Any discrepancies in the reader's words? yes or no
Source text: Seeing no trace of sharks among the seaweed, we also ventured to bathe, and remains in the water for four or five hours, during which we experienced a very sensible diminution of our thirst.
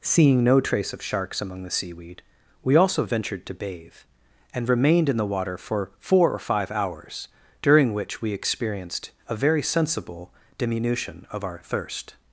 yes